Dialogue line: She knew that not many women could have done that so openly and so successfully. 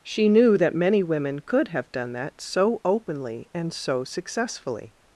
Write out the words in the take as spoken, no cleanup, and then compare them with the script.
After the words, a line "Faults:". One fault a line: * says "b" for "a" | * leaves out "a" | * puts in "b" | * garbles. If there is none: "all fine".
She knew that many women could have done that so openly and so successfully.
Faults:
* leaves out "not"